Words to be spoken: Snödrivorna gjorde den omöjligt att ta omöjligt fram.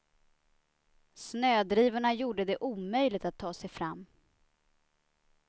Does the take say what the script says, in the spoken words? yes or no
no